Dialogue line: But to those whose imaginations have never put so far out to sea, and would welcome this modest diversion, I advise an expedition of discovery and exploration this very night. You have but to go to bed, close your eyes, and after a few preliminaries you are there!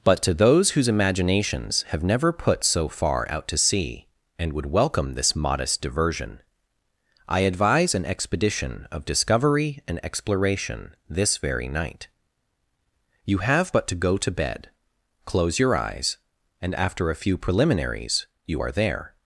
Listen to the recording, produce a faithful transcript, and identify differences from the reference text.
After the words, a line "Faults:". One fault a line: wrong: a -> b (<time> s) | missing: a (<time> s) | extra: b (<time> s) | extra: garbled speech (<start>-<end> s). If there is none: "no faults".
But to those whose imaginations have never put so far out to sea, and would welcome this modest diversion, I advise an expedition of discovery and exploration this very night. You have but to go to bed, close your eyes, and after a few preliminaries you are there!
Faults:
no faults